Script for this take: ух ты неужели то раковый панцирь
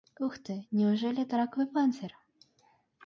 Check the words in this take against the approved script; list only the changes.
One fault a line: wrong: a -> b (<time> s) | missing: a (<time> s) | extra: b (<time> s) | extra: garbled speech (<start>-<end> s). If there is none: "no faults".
wrong: то -> это (1.2 s)